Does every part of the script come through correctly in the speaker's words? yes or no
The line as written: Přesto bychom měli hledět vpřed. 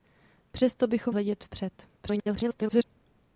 no